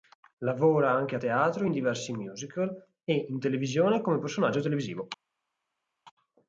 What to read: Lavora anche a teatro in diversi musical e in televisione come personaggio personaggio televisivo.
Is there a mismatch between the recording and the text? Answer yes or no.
yes